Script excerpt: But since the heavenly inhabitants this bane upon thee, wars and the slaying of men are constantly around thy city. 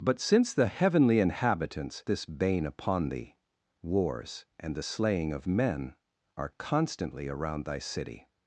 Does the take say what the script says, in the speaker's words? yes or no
yes